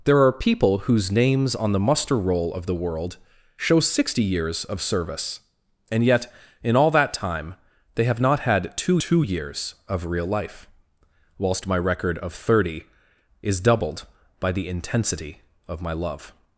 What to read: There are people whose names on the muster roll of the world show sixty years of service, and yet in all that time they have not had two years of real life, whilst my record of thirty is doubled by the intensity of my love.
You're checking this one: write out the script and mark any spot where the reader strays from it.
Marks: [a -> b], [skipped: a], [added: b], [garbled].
There are people whose names on the muster roll of the world show sixty years of service, and yet in all that time they have not had two [added: two] years of real life, whilst my record of thirty is doubled by the intensity of my love.